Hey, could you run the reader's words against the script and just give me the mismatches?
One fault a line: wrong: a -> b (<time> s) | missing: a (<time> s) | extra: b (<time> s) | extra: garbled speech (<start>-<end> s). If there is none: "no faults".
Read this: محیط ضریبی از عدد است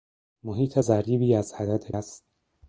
no faults